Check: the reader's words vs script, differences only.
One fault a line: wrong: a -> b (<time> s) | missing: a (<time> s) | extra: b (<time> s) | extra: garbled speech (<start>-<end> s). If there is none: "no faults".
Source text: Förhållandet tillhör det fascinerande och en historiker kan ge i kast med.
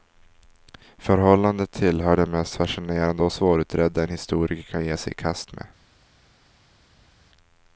extra: mest (2.2 s)
extra: svårutredda (3.3 s)
extra: sig (5.0 s)